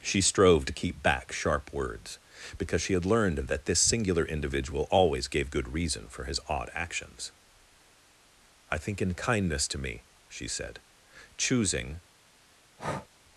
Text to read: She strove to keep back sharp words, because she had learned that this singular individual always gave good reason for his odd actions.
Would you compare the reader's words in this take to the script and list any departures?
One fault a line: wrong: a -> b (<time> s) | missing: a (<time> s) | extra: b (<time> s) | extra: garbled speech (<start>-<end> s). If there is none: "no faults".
extra: I think in kindness to me she said choosing (8.7 s)